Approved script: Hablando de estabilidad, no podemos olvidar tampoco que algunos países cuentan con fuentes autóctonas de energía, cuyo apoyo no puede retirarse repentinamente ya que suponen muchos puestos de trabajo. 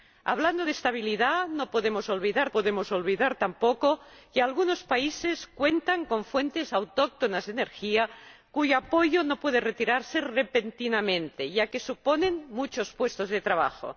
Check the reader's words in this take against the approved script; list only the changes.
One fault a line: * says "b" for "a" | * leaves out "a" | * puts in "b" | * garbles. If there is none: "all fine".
* puts in "podemos olvidar"